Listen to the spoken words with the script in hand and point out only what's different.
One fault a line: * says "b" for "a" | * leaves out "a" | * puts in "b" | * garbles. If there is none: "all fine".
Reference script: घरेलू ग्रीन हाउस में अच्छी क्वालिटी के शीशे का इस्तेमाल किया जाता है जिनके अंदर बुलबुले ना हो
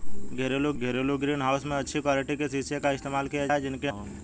* puts in "घरेलू"
* leaves out "जाता"
* leaves out "अंदर बुलबुले ना"